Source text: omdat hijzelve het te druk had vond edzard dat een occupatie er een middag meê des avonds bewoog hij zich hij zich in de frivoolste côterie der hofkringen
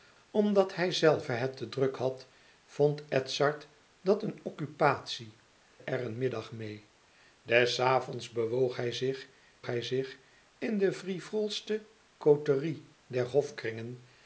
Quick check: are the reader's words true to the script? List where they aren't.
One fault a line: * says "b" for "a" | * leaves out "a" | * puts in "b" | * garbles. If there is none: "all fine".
all fine